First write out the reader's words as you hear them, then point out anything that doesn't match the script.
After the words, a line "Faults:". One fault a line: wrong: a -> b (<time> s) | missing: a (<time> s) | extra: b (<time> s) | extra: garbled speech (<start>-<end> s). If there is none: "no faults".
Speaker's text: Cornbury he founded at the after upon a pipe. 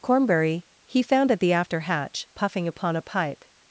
Cornbury he found at the after hatch, puffing upon a pipe.
Faults:
wrong: founded -> found (1.0 s)
extra: hatch puffing (1.8 s)